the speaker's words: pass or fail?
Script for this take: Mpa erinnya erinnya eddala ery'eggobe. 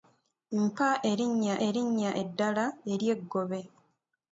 pass